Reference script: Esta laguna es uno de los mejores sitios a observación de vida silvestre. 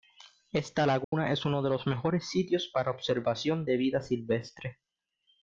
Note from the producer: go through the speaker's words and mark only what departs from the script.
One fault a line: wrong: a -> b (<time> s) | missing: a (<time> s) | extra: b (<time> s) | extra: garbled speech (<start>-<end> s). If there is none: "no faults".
wrong: a -> para (2.7 s)